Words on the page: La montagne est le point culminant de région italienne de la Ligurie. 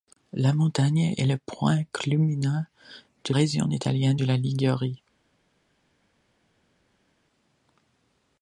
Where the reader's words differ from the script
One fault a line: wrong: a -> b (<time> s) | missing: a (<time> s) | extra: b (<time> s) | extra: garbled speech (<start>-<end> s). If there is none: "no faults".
no faults